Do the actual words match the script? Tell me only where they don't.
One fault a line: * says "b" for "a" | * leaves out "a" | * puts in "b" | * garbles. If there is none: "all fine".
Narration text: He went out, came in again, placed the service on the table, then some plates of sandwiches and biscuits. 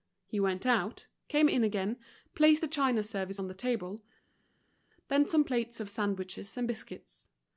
* puts in "china"